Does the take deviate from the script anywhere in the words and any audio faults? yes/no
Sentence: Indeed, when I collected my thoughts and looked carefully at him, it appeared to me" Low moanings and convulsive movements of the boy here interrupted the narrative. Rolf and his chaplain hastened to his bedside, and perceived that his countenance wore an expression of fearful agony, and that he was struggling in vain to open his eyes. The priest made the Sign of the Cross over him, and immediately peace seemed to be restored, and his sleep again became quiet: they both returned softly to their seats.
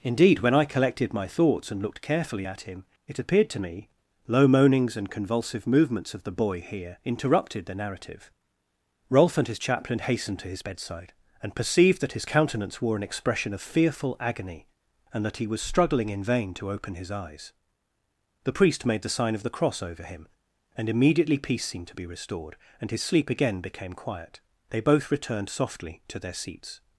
no